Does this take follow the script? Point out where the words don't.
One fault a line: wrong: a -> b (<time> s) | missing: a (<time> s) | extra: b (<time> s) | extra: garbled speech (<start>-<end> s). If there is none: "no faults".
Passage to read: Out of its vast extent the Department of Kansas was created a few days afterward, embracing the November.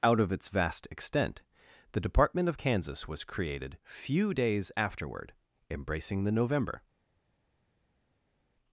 missing: a (3.8 s)